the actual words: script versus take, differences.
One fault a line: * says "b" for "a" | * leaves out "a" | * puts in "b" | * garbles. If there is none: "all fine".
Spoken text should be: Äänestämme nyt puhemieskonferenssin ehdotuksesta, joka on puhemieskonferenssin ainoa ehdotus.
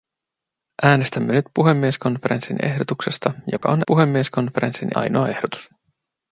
all fine